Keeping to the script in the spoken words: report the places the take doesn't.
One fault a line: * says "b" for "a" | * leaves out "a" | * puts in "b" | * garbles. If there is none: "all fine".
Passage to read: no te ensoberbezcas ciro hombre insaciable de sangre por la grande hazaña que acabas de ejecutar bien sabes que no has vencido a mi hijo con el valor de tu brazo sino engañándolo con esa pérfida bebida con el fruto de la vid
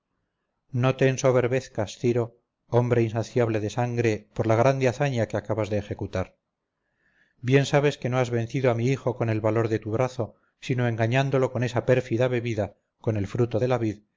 all fine